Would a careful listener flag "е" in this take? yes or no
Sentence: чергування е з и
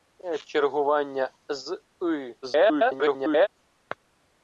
yes